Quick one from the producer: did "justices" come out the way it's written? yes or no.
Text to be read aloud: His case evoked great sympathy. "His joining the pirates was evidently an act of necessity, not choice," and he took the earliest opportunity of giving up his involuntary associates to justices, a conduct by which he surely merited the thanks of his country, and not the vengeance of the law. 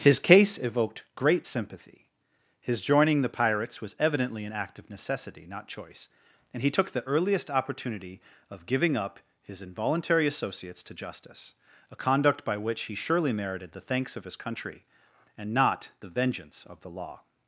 no